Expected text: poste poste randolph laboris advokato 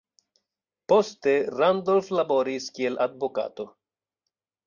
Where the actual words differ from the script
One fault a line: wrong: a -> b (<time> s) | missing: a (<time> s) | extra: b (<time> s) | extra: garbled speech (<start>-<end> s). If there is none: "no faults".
missing: poste (1.3 s)
extra: kiel (2.8 s)